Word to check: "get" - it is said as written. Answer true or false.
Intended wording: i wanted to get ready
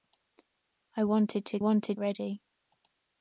false